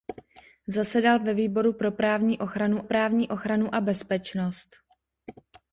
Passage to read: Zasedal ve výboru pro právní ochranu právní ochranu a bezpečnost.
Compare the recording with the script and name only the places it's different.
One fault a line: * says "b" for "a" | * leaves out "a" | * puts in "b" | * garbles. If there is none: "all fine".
all fine